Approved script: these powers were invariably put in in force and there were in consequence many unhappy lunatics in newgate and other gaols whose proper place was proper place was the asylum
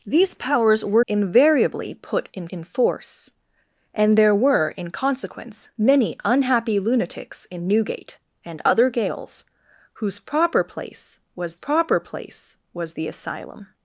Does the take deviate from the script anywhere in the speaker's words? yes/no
no